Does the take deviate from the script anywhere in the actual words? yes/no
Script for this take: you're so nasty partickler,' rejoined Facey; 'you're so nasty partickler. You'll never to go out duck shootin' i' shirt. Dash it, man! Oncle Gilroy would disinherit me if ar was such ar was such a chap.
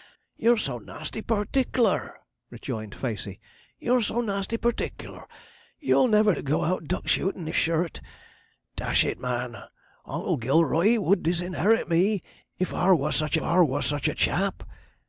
no